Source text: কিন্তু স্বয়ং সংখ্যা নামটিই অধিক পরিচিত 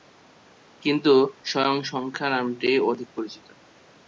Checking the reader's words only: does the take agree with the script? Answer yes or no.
yes